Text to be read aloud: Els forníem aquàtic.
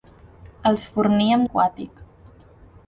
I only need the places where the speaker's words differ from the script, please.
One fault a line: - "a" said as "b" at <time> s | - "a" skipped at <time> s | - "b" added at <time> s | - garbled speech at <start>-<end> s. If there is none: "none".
none